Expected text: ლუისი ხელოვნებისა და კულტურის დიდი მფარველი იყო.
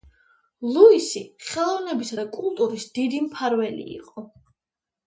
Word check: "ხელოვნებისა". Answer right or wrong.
right